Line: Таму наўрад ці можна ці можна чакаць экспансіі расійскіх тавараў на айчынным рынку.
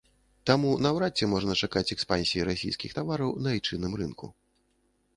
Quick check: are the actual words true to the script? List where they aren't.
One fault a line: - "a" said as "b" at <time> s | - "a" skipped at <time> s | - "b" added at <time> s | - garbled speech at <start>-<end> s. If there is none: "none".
- "ці можна" skipped at 1.6 s